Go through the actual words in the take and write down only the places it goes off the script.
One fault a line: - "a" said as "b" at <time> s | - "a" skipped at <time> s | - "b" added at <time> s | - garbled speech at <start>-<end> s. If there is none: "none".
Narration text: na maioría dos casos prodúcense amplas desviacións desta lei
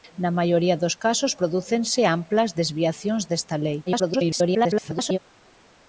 - garbled speech at 3.9-5.2 s